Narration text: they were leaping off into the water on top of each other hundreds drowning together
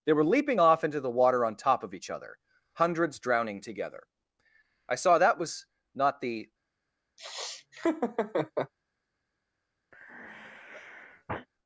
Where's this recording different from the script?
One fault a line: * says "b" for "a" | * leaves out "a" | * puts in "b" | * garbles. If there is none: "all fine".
* puts in "i saw that was not the"